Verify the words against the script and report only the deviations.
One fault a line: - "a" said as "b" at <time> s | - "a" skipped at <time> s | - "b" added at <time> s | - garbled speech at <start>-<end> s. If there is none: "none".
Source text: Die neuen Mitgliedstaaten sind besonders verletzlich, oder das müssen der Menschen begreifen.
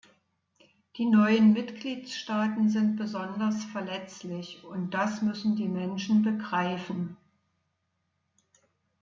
- "oder" said as "und" at 4.6 s
- "der" said as "die" at 5.5 s